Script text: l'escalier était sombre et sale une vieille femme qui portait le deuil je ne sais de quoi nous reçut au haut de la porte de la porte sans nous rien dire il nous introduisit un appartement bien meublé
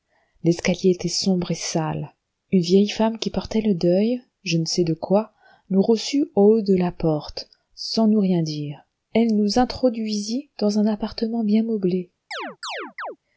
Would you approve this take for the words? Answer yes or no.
no